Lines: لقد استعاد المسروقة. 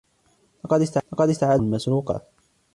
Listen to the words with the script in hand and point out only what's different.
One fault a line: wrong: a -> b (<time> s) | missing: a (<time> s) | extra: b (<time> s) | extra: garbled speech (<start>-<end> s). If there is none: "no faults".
no faults